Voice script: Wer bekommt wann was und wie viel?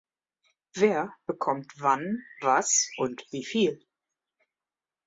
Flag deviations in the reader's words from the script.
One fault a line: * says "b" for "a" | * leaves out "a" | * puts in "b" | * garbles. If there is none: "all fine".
all fine